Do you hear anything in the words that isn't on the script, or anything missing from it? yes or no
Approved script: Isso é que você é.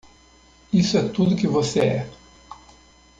yes